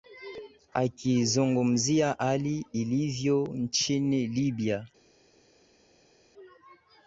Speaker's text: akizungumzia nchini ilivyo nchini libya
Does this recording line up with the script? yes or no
no